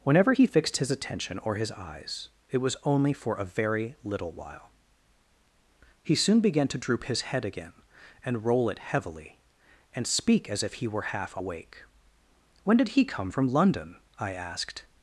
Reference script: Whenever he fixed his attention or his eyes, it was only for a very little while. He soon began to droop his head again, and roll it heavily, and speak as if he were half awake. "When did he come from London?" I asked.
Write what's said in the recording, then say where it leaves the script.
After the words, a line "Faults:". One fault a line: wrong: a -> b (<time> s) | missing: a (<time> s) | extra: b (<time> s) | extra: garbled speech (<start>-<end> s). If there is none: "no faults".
Whenever he fixed his attention or his eyes, it was only for a very little while. He soon began to droop his head again, and roll it heavily, and speak as if he were half awake. "When did he come from London?" I asked.
Faults:
no faults